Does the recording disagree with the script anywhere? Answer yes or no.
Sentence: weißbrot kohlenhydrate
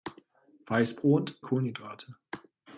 no